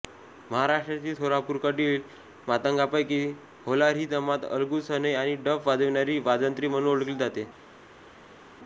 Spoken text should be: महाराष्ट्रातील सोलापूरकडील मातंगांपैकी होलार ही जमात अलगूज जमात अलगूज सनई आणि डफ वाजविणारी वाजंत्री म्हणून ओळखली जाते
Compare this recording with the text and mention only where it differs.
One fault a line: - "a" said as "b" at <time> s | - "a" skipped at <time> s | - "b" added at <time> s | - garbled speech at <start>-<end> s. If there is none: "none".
- "जमात अलगूज" skipped at 4.9 s